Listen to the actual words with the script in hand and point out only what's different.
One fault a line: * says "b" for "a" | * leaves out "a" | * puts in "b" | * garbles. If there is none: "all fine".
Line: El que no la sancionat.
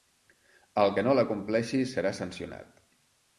* puts in "compleixi serà"